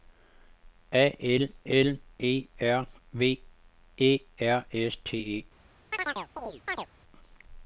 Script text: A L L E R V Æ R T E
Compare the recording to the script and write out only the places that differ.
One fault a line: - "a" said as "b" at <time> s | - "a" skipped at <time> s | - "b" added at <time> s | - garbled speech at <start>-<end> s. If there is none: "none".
- "S" added at 4.7 s